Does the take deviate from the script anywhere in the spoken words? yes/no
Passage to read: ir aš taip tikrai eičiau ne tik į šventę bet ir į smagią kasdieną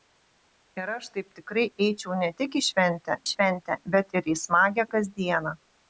yes